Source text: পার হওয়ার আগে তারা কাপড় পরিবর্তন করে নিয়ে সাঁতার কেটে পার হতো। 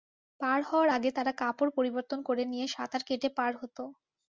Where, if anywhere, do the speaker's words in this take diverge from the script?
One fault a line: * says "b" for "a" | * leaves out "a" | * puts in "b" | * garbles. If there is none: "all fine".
all fine